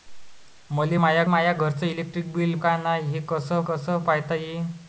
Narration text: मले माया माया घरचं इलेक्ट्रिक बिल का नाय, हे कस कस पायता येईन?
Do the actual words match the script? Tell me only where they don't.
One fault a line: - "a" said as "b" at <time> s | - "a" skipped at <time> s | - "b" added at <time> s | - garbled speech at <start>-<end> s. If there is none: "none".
none